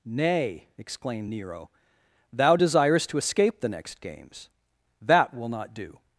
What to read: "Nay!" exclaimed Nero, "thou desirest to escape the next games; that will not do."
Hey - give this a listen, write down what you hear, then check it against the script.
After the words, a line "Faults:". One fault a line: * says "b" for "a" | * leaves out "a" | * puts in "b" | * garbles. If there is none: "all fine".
"Nay!" exclaimed Nero, "thou desirest to escape the next games; that will not do."
Faults:
all fine